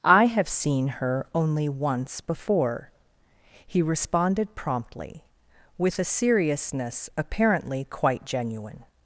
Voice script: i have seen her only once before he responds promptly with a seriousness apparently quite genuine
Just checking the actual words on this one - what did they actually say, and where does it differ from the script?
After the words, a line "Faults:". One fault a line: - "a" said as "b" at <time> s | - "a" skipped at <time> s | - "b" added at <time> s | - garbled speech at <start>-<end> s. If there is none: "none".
i have seen her only once before he responded promptly with a seriousness apparently quite genuine
Faults:
- "responds" said as "responded" at 3.8 s